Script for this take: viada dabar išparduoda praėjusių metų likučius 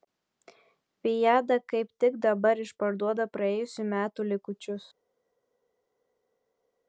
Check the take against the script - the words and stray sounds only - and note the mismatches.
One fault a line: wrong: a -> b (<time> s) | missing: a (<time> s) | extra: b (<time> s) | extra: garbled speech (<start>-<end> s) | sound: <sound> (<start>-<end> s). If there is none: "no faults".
extra: kaip tik (1.7 s)